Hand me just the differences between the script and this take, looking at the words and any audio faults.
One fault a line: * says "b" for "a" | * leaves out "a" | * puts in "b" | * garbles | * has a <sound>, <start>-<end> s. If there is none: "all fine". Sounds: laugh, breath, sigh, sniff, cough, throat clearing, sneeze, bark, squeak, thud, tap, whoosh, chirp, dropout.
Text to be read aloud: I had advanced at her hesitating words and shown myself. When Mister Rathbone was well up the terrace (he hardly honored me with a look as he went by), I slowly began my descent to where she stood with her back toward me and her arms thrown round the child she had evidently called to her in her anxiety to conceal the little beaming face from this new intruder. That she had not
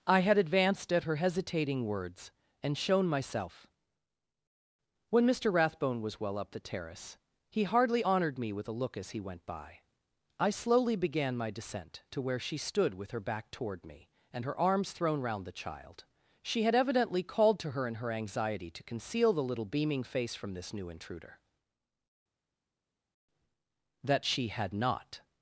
all fine